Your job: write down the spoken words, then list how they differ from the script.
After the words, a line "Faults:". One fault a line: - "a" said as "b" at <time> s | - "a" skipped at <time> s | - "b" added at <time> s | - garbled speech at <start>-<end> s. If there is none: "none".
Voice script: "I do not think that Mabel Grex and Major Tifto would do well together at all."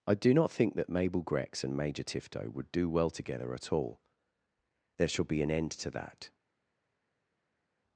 "I do not think that Mabel Grex and Major Tifto would do well together at all." "There shall be an end to that
Faults:
- "There shall be an end to that" added at 5.0 s